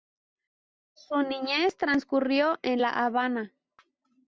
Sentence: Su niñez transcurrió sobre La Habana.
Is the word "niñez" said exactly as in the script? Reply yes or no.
yes